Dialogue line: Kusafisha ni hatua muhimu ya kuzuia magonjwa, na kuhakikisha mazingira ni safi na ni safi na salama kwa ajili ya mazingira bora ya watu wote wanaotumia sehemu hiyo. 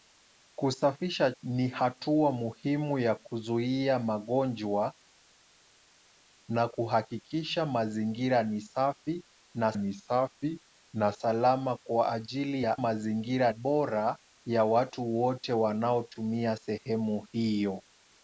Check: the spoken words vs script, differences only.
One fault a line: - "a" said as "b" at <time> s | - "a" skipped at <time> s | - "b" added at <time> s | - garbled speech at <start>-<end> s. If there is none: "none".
none